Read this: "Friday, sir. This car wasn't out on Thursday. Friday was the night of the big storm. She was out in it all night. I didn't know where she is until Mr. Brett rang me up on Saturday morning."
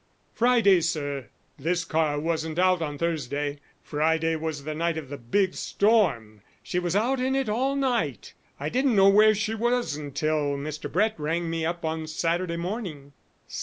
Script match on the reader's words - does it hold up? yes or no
no